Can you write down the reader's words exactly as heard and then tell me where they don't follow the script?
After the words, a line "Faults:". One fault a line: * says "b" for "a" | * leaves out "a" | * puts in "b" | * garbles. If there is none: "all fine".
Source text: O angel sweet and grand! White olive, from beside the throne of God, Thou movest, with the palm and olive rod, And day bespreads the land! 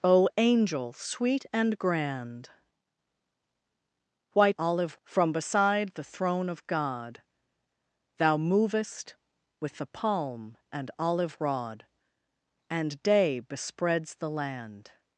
O angel sweet and grand! White olive, from beside the throne of God, Thou movest, with the palm and olive rod, And day bespreads the land!
Faults:
all fine